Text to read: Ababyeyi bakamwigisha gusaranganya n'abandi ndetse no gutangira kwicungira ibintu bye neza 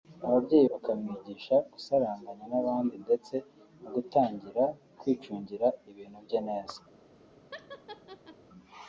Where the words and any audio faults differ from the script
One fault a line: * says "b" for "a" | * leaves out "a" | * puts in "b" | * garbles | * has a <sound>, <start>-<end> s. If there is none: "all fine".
* has a laugh, 7.5-8.4 s